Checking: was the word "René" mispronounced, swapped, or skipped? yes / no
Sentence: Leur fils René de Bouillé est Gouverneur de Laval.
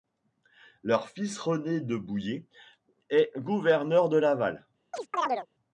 no